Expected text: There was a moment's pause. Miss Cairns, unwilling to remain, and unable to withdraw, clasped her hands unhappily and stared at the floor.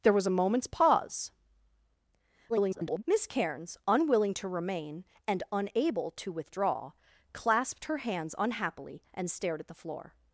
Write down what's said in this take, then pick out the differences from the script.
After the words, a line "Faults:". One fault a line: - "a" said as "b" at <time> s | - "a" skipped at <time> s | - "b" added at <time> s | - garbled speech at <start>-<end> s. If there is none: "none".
There was a moment's pause. [garbled] Miss Cairns, unwilling to remain, and unable to withdraw, clasped her hands unhappily and stared at the floor.
Faults:
- garbled speech at 2.5-3.0 s